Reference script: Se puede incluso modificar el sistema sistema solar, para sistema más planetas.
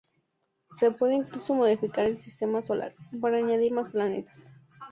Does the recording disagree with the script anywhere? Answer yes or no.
yes